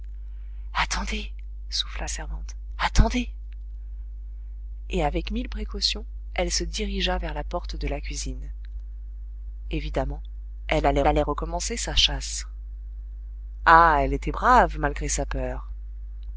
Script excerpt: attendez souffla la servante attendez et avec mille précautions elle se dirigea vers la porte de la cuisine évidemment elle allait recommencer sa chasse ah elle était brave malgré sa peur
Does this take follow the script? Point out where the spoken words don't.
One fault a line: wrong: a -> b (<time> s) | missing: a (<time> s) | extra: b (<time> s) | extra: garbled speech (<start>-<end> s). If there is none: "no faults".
missing: la (2.1 s)
extra: allait (11.1 s)